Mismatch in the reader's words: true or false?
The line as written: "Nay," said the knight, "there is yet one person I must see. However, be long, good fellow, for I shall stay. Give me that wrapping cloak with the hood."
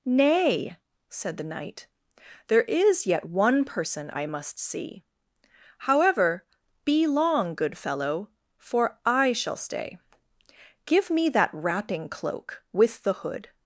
false